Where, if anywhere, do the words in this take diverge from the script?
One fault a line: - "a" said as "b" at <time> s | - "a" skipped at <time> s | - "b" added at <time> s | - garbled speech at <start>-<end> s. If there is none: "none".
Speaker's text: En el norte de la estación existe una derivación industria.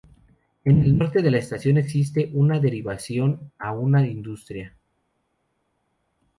- "a una" added at 3.6 s